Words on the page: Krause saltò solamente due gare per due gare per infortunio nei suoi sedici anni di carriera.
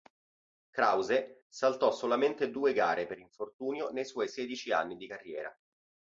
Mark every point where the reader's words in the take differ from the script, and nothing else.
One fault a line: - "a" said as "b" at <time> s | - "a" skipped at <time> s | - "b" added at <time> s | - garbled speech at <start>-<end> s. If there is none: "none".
- "due gare per" skipped at 3.2 s